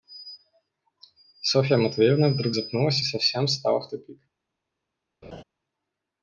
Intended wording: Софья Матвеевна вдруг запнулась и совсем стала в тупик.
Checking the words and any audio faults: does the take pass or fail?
fail